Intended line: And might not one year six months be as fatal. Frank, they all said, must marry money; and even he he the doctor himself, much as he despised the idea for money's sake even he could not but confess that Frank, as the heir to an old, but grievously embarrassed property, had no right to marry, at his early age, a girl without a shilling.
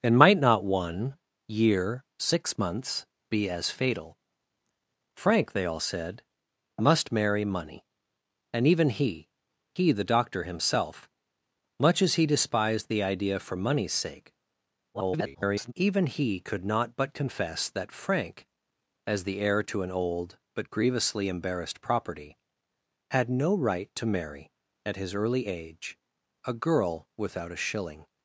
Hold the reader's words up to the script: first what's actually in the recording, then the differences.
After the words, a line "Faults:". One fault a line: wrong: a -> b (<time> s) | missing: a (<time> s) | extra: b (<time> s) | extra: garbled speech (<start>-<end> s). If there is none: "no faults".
And might not one year six months be as fatal. Frank, they all said, must marry money; and even he he the doctor himself, much as he despised the idea for money's sake [garbled] even he could not but confess that Frank, as the heir to an old, but grievously embarrassed property, had no right to marry, at his early age, a girl without a shilling.
Faults:
extra: garbled speech (14.9-15.7 s)